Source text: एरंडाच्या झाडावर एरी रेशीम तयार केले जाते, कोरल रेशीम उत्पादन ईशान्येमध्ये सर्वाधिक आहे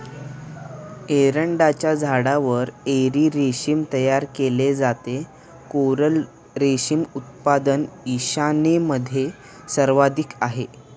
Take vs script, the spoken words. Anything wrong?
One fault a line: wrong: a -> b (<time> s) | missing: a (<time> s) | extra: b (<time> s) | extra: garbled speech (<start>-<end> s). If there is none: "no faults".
no faults